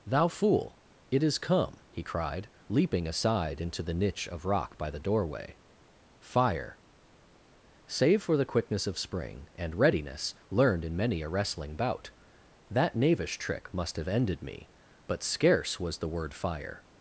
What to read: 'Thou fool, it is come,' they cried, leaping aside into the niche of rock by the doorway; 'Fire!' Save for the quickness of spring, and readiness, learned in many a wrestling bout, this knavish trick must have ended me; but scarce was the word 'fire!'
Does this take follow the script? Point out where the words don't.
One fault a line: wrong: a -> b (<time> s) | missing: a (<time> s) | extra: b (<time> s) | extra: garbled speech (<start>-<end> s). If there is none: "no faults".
wrong: they -> he (1.9 s)
wrong: this -> that (12.7 s)